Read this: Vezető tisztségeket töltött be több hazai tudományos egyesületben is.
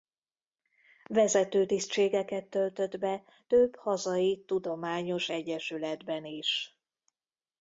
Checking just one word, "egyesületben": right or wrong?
right